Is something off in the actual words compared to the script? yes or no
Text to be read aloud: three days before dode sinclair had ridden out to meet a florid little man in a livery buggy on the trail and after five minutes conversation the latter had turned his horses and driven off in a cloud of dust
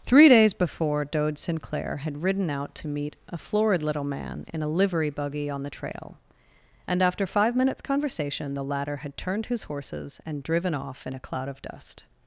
no